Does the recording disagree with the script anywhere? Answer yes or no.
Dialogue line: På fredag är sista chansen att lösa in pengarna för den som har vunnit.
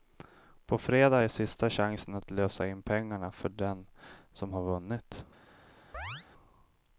no